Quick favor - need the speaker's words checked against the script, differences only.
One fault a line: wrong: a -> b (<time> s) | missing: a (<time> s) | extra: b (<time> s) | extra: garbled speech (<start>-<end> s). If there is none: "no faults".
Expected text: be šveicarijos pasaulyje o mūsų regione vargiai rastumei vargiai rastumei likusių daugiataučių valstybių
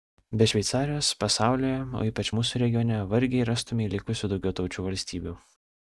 extra: ypač (2.1 s)
missing: vargiai rastumei (3.9 s)